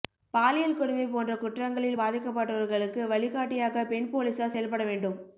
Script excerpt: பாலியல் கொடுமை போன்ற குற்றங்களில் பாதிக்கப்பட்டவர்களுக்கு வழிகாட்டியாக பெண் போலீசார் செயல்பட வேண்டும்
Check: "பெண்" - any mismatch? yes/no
no